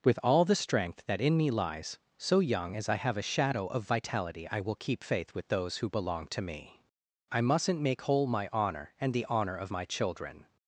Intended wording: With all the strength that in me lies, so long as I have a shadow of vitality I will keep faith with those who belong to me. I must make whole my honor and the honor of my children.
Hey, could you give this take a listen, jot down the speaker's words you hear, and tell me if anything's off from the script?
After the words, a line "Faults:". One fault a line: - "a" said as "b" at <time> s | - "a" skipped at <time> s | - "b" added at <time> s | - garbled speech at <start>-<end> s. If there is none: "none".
With all the strength that in me lies, so young as I have a shadow of vitality I will keep faith with those who belong to me. I mustn't make whole my honor and the honor of my children.
Faults:
- "long" said as "young" at 2.4 s
- "must" said as "mustn't" at 7.4 s